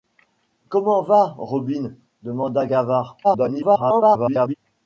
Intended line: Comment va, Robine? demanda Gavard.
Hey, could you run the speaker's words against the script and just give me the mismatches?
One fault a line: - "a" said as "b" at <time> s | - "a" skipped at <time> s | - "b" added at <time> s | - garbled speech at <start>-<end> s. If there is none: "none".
- garbled speech at 3.2-4.5 s